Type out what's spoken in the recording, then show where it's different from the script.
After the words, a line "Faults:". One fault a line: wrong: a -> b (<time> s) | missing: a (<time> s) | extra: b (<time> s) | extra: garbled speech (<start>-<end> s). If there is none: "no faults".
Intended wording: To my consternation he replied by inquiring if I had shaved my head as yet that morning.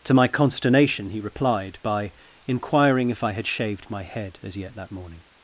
To my consternation he replied by inquiring if I had shaved my head as yet that morning.
Faults:
no faults